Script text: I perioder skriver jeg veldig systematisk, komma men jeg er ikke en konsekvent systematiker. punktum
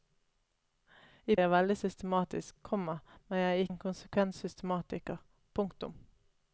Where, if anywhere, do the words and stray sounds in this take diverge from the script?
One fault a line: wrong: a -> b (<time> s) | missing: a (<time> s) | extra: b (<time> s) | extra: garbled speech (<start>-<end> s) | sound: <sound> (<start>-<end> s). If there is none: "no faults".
missing: perioder skriver (1.4 s)
missing: ikke (3.7 s)